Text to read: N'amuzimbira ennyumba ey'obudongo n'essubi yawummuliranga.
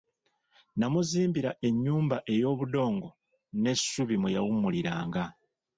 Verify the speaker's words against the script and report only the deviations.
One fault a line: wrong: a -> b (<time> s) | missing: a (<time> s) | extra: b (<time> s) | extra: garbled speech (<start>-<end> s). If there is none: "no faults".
extra: mwe (4.2 s)